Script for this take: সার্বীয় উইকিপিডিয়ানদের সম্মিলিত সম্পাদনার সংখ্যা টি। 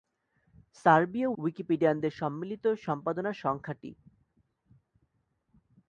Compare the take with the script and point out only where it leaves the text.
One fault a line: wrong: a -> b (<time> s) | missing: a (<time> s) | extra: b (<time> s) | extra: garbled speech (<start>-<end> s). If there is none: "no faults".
no faults